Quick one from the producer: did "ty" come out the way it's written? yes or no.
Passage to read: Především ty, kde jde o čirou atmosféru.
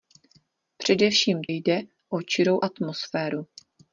no